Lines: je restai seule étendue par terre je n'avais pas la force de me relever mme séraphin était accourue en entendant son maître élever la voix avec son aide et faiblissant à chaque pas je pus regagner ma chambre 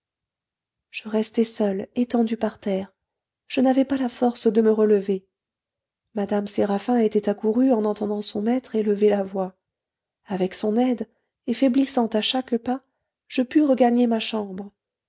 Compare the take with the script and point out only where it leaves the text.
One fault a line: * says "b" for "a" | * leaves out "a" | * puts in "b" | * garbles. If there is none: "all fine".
all fine